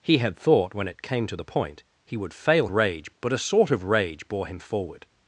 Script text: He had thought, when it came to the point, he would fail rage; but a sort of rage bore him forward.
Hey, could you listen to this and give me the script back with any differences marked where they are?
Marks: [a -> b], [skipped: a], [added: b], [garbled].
He had thought, when it came to the point, he would fail rage; but a sort of rage bore him forward.